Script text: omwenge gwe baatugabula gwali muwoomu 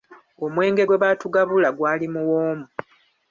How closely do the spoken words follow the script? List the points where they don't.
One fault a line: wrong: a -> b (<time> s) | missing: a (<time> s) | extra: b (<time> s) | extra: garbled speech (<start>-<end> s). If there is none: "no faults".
no faults